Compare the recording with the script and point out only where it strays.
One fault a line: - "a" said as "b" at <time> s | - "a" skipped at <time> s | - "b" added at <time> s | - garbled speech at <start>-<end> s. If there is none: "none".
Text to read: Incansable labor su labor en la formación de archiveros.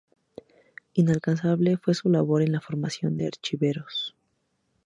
- "labor" said as "fue" at 1.8 s